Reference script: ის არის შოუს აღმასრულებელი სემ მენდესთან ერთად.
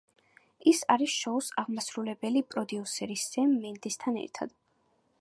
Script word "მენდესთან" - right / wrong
right